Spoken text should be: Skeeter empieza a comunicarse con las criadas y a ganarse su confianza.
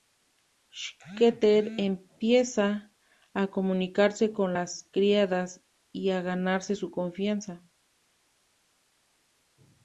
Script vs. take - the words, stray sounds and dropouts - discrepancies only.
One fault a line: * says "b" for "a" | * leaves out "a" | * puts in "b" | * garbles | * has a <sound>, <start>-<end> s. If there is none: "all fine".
all fine